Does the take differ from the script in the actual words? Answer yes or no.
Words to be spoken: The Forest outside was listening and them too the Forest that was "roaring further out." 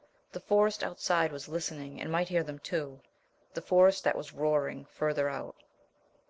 yes